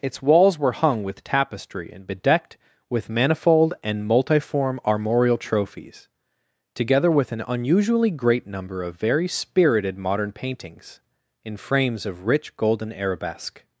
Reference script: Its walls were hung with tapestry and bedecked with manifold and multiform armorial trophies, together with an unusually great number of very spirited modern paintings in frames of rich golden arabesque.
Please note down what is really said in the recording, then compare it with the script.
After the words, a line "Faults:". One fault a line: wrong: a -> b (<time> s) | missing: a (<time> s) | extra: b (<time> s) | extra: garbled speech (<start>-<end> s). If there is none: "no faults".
Its walls were hung with tapestry and bedecked with manifold and multiform armorial trophies, together with an unusually great number of very spirited modern paintings in frames of rich golden arabesque.
Faults:
no faults